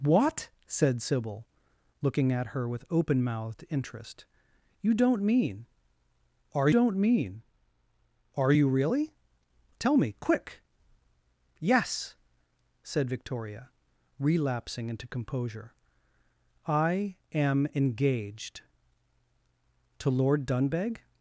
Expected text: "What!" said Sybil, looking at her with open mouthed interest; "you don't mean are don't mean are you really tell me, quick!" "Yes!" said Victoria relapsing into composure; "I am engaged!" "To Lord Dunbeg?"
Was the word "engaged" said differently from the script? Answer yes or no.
no